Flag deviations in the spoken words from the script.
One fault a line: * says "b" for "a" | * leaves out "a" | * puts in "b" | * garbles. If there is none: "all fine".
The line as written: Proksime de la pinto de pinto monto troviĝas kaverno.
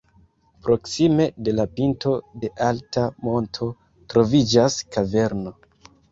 * says "alta" for "pinto"